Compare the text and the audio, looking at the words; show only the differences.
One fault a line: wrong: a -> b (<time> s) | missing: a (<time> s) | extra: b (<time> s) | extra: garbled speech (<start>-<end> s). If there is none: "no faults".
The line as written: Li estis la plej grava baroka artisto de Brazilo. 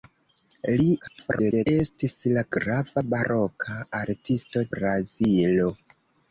extra: garbled speech (1.0-1.7 s)
missing: plej (2.4 s)
missing: de (4.7 s)